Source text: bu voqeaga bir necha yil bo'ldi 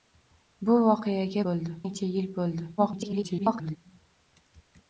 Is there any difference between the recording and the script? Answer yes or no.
yes